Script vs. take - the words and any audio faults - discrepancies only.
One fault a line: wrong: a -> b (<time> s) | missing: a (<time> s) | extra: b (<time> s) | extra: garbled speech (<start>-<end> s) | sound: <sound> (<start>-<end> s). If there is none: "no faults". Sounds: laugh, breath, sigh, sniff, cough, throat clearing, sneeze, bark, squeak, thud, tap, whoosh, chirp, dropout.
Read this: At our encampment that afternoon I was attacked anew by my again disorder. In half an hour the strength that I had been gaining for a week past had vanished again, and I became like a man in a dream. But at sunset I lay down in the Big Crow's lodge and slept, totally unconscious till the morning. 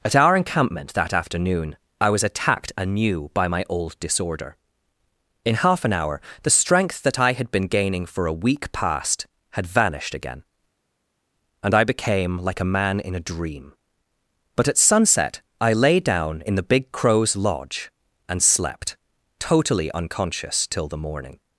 wrong: again -> old (3.7 s)